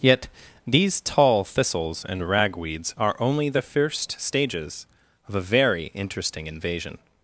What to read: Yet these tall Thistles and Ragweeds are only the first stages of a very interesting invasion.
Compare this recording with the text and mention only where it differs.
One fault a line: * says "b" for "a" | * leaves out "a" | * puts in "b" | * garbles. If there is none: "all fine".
all fine